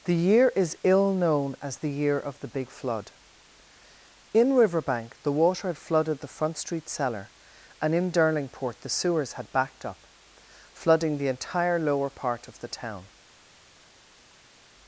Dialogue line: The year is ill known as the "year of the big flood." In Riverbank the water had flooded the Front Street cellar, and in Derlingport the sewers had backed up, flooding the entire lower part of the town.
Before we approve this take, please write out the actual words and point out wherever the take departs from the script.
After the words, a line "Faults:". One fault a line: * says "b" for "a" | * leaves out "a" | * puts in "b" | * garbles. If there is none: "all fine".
The year is ill known as the "year of the big flood." In Riverbank the water had flooded the Front Street cellar, and in Derlingport the sewers had backed up, flooding the entire lower part of the town.
Faults:
all fine